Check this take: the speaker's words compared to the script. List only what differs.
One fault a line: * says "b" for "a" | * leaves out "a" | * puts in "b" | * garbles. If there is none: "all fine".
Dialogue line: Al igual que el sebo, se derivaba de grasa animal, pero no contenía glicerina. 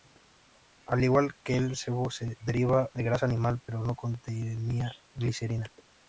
all fine